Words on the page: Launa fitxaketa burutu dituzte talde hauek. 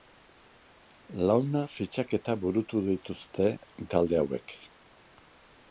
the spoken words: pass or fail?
pass